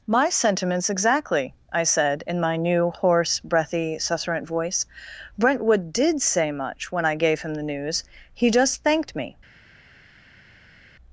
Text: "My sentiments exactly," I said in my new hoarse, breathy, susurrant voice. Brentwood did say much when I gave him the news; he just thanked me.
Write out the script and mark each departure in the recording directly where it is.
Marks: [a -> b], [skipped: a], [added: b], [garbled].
"My sentiments exactly," I said in my new hoarse, breathy, susurrant voice. Brentwood did say much when I gave him the news; he just thanked me.